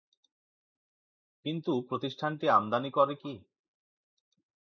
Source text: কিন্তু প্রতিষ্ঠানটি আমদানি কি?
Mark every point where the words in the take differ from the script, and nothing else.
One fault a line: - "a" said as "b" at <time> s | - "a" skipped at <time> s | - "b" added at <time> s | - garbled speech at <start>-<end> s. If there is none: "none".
- "করে" added at 2.9 s